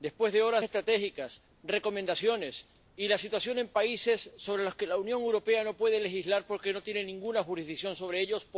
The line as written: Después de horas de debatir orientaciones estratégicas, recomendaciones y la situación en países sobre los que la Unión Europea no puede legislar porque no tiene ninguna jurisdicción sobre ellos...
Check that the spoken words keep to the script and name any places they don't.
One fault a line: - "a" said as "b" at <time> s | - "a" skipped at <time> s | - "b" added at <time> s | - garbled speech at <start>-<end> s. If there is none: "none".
- "de debatir orientaciones" skipped at 0.6 s